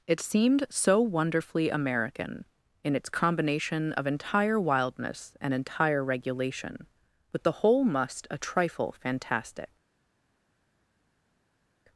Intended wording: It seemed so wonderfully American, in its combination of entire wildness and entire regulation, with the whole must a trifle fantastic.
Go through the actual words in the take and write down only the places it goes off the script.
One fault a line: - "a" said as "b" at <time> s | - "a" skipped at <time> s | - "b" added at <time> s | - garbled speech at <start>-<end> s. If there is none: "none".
none